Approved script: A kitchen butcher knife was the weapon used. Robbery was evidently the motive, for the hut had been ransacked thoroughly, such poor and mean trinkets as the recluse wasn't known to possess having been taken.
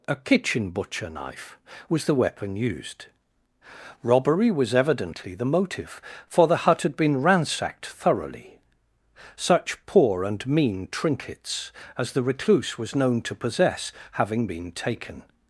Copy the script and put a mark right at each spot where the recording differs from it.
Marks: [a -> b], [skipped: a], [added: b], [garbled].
A kitchen butcher knife was the weapon used. Robbery was evidently the motive, for the hut had been ransacked thoroughly, such poor and mean trinkets as the recluse [wasn't -> was] known to possess having been taken.